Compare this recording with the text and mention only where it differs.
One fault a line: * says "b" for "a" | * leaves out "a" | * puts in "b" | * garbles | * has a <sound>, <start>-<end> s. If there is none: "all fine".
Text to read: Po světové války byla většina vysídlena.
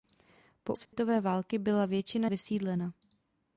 * has a dropout, 0.9-0.9 s